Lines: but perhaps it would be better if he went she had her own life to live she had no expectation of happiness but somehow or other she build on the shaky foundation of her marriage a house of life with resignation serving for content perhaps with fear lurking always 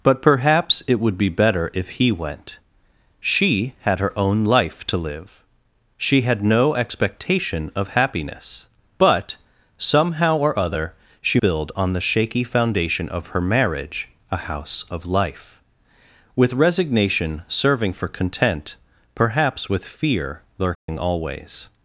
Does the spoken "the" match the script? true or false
true